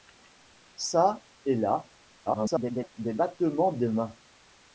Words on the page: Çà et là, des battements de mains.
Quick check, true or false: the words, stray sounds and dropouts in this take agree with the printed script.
false